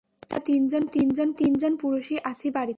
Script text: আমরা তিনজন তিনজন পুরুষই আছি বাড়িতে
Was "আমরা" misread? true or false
false